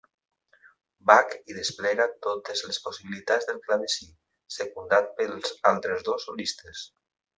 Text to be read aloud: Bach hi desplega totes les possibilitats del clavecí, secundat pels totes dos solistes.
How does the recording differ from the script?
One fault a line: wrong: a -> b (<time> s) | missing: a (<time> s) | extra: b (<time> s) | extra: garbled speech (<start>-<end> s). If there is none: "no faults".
wrong: totes -> altres (5.7 s)